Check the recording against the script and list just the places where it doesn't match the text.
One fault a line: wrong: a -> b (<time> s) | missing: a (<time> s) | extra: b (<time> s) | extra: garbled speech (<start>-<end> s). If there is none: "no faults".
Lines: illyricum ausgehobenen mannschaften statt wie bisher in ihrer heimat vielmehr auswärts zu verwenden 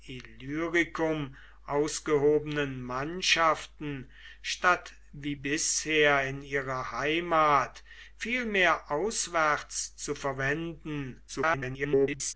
extra: garbled speech (11.3-12.3 s)